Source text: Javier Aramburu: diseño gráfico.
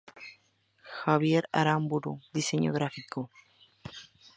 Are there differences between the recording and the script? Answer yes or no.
no